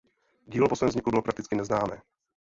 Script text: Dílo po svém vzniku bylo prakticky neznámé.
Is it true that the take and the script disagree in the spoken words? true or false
false